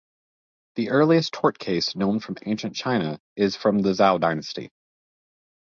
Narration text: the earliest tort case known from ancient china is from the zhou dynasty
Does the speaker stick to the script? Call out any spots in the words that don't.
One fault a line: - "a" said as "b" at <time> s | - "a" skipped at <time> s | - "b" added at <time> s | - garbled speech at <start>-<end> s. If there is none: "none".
none